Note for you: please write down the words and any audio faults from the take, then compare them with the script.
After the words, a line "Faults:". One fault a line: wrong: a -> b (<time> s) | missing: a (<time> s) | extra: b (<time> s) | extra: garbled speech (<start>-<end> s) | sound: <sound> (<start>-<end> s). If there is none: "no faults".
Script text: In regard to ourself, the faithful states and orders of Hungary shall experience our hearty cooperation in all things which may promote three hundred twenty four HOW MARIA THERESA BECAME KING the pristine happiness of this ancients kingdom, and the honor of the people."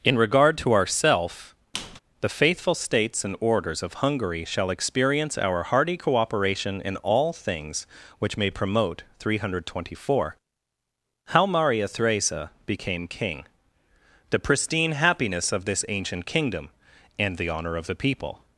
In regard to ourself, the faithful states and orders of Hungary shall experience our hearty cooperation in all things which may promote three hundred twenty four HOW MARIA THERESA BECAME KING the pristine happiness of this ancient kingdom, and the honor of the people."
Faults:
sound: squeak (1.7-2.0 s)
wrong: ancients -> ancient (15.9 s)